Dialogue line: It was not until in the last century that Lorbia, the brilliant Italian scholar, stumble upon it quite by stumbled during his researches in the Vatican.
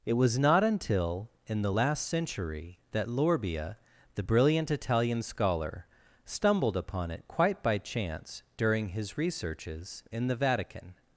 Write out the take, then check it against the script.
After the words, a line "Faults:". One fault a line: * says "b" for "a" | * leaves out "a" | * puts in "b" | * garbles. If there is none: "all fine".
It was not until in the last century that Lorbia, the brilliant Italian scholar, stumbled upon it quite by chance during his researches in the Vatican.
Faults:
* says "stumbled" for "stumble"
* says "chance" for "stumbled"